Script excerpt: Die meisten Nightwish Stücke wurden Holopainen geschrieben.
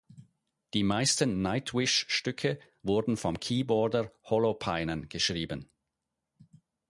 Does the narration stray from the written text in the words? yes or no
yes